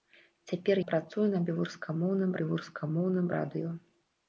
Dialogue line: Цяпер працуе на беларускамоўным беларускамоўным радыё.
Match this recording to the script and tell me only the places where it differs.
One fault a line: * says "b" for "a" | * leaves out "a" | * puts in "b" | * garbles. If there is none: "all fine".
all fine